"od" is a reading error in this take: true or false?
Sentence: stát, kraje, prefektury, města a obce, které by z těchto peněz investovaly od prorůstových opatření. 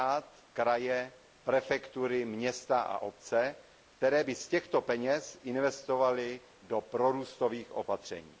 true